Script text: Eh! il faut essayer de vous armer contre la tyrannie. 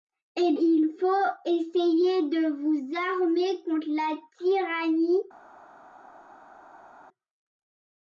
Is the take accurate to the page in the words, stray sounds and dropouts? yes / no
yes